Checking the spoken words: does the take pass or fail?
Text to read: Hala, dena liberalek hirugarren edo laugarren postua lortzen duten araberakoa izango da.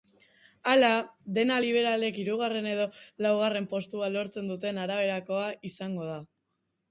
pass